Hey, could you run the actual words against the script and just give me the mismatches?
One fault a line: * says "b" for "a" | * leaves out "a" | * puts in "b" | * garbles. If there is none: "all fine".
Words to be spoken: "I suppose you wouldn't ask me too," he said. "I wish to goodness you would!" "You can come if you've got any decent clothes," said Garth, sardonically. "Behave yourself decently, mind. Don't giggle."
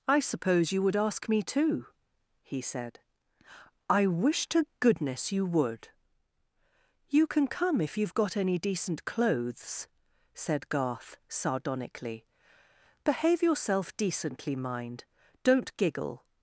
* says "would" for "wouldn't"